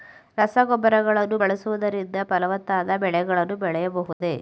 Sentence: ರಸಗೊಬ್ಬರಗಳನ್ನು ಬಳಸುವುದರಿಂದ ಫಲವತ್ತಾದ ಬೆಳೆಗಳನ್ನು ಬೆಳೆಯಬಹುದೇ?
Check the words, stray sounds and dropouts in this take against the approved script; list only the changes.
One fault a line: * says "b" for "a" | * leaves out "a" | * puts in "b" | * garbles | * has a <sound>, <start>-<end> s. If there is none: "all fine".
* has a dropout, 4.1-4.2 s